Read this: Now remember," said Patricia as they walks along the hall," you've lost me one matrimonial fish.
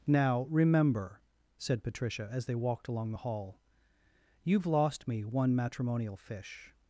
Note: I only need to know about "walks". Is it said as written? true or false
false